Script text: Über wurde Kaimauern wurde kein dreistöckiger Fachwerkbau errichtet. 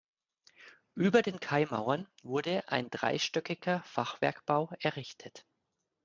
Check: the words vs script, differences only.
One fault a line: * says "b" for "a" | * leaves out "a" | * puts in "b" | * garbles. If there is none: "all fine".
* says "den" for "wurde"
* says "ein" for "kein"